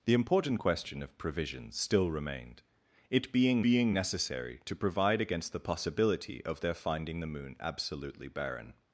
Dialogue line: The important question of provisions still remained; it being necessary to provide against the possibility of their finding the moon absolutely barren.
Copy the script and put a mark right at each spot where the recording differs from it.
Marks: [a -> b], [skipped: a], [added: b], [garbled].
The important question of provisions still remained; it being [added: being] necessary to provide against the possibility of their finding the moon absolutely barren.